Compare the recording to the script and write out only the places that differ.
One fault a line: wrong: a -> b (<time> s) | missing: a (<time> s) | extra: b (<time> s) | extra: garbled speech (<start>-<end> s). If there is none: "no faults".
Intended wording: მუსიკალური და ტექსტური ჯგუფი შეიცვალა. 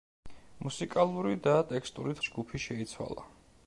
no faults